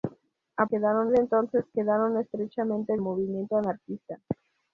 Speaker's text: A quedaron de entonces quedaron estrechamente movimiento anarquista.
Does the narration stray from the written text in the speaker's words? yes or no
no